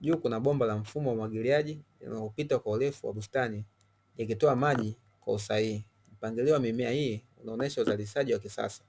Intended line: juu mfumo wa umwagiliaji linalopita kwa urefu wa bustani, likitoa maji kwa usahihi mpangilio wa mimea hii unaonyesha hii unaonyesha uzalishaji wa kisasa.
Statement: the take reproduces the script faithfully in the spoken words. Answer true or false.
false